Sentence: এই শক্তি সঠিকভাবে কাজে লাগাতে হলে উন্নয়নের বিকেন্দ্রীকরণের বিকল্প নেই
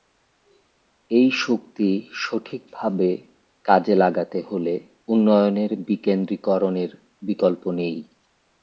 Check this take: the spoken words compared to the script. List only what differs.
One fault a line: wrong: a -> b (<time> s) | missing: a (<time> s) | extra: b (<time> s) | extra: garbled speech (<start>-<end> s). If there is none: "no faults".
no faults